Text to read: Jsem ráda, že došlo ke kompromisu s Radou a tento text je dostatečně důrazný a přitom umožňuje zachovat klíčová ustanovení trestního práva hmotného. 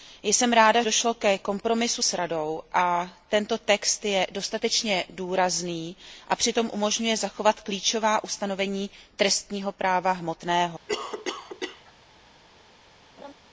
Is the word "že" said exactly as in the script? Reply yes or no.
no